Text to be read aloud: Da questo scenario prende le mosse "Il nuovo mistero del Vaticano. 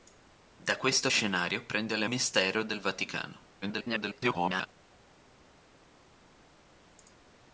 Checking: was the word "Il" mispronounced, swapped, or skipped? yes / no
yes